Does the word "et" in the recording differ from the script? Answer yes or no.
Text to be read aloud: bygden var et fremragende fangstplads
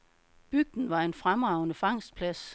yes